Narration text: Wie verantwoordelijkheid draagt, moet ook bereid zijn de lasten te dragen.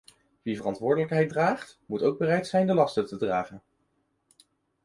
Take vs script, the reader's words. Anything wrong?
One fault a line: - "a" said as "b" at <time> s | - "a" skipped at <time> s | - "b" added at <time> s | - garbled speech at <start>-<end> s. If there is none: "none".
none